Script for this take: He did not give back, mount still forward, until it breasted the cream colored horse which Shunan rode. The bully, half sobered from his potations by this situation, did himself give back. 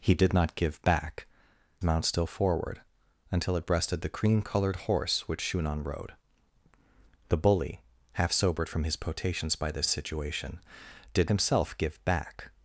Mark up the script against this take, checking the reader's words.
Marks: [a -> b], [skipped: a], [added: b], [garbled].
He did not give back, mount still forward, until it breasted the cream colored horse which Shunan rode. The bully, half sobered from his potations by this situation, did himself give back.